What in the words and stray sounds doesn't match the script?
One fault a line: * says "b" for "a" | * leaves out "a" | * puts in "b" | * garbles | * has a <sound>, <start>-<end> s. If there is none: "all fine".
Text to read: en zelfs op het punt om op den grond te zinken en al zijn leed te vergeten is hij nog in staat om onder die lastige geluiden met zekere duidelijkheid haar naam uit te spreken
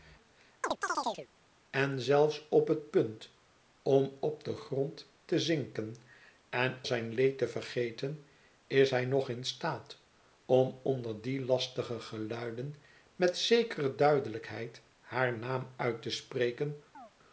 * has a chirp, 0.6-1.3 s
* leaves out "al"
* has a chirp, 16.9-17.1 s